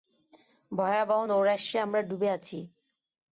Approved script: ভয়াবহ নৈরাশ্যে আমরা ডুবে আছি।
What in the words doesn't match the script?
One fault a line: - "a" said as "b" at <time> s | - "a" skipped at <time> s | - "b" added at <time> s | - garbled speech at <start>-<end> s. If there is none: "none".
none